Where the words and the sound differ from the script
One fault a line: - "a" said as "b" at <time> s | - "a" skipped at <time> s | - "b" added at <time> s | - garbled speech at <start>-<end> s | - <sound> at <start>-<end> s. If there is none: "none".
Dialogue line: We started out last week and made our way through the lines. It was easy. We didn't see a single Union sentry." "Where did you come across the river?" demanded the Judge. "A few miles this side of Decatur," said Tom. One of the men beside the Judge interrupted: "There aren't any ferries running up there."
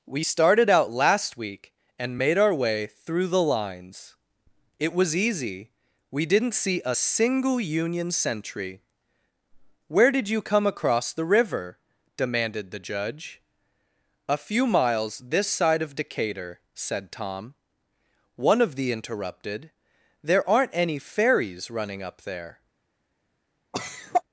- "men beside the Judge" skipped at 18.9 s
- cough at 23.7-24.2 s